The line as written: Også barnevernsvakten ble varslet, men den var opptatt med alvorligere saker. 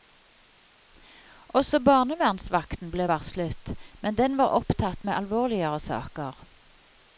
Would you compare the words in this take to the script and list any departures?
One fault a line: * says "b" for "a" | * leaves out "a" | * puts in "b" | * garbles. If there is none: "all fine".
all fine